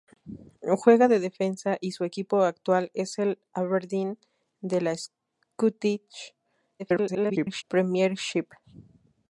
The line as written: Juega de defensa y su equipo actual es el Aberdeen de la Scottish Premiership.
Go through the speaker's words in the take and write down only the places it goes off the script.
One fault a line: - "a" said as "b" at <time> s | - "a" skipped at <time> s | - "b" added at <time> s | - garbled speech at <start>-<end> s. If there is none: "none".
- garbled speech at 6.8-7.6 s